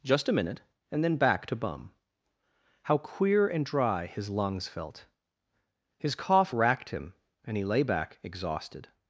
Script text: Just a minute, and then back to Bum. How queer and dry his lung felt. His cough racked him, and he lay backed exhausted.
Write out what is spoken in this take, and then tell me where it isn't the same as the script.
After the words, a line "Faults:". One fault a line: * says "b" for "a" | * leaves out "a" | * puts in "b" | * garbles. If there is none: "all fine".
Just a minute, and then back to Bum. How queer and dry his lungs felt. His cough racked him, and he lay back exhausted.
Faults:
* says "lungs" for "lung"
* says "back" for "backed"